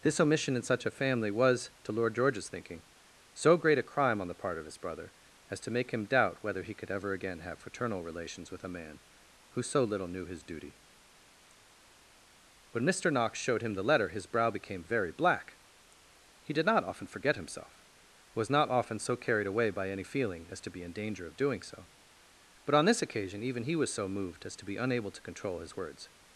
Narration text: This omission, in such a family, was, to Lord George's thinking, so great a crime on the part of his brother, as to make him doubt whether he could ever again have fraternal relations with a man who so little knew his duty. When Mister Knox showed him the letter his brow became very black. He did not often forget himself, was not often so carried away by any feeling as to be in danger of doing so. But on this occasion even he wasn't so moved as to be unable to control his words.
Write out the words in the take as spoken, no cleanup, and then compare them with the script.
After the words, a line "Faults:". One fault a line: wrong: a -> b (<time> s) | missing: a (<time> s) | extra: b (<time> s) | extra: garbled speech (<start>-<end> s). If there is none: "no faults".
This omission, in such a family, was, to Lord George's thinking, so great a crime on the part of his brother, as to make him doubt whether he could ever again have fraternal relations with a man who so little knew his duty. When Mister Knox showed him the letter his brow became very black. He did not often forget himself, was not often so carried away by any feeling as to be in danger of doing so. But on this occasion even he was so moved as to be unable to control his words.
Faults:
wrong: wasn't -> was (23.7 s)